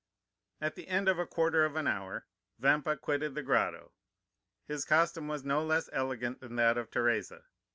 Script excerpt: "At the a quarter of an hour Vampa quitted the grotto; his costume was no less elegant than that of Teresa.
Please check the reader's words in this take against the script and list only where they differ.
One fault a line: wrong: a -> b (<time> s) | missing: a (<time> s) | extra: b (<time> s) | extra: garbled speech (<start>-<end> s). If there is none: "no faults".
extra: end of (0.9 s)